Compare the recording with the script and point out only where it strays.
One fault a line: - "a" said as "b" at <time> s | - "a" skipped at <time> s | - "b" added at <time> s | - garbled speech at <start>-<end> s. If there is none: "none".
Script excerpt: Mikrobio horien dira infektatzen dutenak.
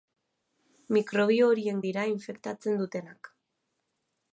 none